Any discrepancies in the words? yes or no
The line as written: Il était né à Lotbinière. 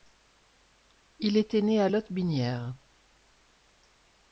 no